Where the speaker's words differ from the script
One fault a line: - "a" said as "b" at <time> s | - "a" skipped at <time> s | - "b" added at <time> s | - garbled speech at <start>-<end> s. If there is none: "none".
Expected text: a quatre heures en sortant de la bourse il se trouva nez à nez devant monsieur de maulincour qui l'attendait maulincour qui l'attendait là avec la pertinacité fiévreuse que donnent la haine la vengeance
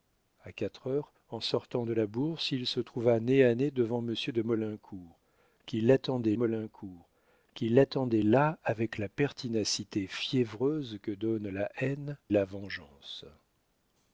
none